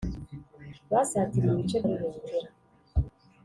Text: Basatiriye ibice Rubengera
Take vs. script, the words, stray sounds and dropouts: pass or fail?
pass